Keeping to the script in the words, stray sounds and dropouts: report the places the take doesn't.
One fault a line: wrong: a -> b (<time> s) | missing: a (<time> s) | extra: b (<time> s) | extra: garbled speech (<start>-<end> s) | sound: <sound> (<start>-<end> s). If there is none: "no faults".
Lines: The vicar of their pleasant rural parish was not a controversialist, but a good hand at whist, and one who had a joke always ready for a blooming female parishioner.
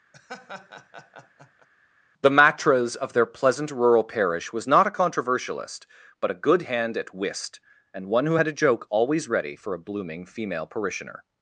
sound: laugh (0.1-1.7 s)
wrong: vicar -> matras (2.3 s)